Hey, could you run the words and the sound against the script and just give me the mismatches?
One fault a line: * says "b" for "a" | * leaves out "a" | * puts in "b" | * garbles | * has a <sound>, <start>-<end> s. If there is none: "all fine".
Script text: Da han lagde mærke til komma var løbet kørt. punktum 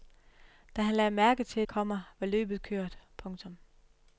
all fine